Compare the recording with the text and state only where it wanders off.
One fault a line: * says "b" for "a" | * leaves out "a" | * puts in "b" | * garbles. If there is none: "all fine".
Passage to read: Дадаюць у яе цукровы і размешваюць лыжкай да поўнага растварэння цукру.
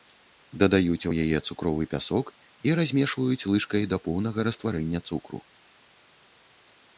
* puts in "пясок"